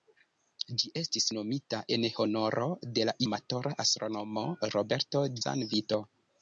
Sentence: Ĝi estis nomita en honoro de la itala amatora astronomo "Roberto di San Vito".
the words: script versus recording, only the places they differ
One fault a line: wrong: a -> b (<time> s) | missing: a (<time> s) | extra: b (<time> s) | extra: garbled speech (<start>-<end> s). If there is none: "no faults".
missing: itala (3.1 s)
missing: di (5.3 s)